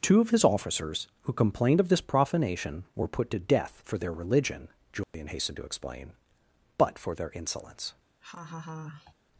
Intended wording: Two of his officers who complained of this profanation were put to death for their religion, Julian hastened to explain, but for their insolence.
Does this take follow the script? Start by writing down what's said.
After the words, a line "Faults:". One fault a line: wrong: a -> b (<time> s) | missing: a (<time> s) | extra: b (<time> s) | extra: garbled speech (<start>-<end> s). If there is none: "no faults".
Two of his officers who complained of this profanation were put to death for their religion, Julian hastened to explain, but for their insolence.
Faults:
no faults